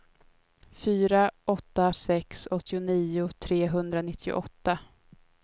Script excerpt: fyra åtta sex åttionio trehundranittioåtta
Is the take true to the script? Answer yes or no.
yes